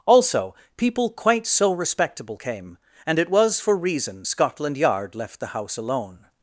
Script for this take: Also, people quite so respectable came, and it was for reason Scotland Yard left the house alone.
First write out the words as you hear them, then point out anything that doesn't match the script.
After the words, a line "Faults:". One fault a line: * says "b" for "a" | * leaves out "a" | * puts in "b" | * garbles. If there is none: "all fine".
Also, people quite so respectable came, and it was for reason Scotland Yard left the house alone.
Faults:
all fine